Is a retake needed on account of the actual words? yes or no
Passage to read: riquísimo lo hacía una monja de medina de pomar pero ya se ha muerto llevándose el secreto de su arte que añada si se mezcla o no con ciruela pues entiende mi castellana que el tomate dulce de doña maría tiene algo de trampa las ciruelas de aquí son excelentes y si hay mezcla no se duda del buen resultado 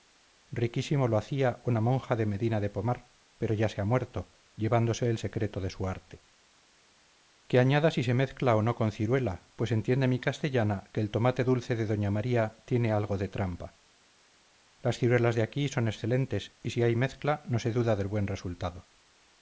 no